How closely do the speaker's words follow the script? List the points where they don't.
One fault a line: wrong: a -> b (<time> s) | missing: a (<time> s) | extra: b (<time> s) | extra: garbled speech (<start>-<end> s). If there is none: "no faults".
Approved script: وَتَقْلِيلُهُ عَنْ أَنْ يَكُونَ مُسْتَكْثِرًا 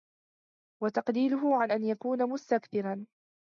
no faults